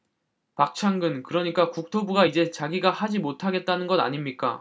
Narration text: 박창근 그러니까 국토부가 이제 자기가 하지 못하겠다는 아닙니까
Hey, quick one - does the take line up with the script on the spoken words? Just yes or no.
no